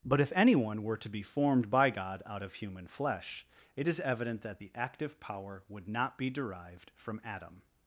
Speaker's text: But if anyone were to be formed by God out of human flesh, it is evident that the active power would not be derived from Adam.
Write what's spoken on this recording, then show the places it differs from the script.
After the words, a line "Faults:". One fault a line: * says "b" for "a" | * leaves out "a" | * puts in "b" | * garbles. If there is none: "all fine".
But if anyone were to be formed by God out of human flesh, it is evident that the active power would not be derived from Adam.
Faults:
all fine